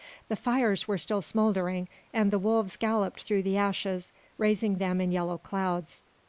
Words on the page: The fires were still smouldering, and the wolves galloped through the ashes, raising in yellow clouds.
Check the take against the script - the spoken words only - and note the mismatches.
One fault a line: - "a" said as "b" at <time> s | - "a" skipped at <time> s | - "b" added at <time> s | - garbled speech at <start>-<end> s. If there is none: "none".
- "them" added at 4.8 s